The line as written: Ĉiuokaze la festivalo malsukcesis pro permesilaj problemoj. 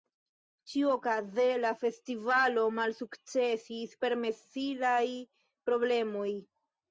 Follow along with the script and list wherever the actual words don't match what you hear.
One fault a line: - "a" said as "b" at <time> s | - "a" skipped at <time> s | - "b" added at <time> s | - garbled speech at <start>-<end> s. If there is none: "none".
- "pro" skipped at 4.0 s